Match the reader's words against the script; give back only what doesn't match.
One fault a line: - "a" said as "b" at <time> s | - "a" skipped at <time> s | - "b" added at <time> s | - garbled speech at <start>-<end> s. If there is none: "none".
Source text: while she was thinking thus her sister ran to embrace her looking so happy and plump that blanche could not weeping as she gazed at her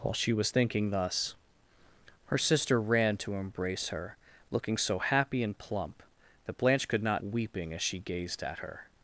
none